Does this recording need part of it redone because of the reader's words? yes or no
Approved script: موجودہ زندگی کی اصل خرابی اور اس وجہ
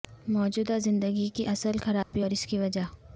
yes